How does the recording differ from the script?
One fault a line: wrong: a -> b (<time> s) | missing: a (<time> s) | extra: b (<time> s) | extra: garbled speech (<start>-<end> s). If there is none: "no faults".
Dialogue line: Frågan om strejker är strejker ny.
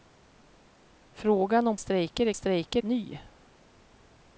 no faults